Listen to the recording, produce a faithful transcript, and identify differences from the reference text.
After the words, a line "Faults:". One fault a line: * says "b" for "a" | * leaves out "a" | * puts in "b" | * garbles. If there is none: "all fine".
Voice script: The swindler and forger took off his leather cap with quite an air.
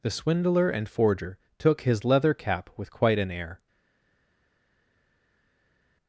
The swindler and forger took his leather cap with quite an air.
Faults:
* leaves out "off"